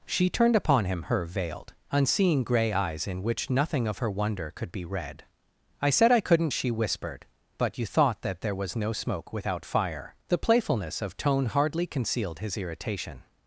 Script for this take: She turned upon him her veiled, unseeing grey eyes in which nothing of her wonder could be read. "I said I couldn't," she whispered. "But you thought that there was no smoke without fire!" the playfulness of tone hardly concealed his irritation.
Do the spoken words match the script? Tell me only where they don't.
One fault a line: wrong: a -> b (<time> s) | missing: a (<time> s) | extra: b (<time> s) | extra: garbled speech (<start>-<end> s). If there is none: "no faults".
no faults